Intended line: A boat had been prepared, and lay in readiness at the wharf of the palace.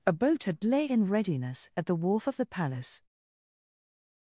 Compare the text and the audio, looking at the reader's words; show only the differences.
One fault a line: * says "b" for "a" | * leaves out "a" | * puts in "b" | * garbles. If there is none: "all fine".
* leaves out "been prepared and"